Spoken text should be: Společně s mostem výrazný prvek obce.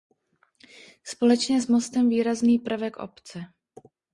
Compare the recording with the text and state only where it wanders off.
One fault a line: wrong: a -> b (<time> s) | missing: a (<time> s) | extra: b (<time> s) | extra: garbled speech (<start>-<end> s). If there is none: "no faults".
no faults